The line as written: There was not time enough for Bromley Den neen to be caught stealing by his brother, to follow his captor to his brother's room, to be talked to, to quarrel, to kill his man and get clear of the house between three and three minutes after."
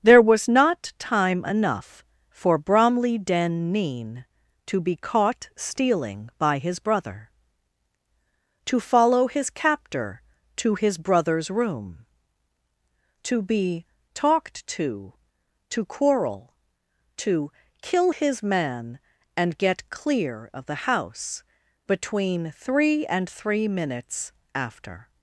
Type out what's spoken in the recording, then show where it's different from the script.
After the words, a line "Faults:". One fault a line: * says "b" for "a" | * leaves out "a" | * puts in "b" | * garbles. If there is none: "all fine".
There was not time enough for Bromley Den neen to be caught stealing by his brother, to follow his captor to his brother's room, to be talked to, to quarrel, to kill his man and get clear of the house between three and three minutes after."
Faults:
all fine